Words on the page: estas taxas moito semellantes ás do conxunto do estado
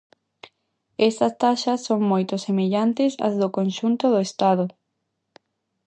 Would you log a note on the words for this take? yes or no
yes